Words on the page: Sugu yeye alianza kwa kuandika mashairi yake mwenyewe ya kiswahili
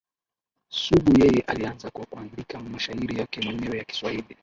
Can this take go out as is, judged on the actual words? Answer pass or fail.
pass